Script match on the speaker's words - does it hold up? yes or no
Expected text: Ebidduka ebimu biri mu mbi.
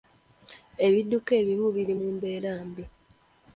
no